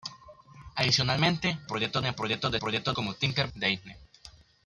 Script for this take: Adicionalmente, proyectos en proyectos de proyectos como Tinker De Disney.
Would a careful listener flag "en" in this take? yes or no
no